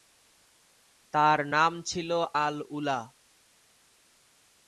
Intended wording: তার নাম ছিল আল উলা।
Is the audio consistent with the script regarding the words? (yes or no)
yes